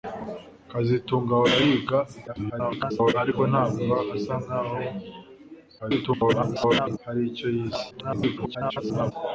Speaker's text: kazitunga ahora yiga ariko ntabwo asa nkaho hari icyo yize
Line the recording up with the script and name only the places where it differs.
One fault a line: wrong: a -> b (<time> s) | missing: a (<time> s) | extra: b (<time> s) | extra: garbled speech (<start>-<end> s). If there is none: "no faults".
extra: garbled speech (2.3-3.1 s)
extra: garbled speech (5.8-7.0 s)
extra: garbled speech (7.9-9.1 s)